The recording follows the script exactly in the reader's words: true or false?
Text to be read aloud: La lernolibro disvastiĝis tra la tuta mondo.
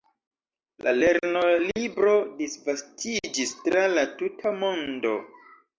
true